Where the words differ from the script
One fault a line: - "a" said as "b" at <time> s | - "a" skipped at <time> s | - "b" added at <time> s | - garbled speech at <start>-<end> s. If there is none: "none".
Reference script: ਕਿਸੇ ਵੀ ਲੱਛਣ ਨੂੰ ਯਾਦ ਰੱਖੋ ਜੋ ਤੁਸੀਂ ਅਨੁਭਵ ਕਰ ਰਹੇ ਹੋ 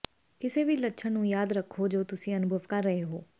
none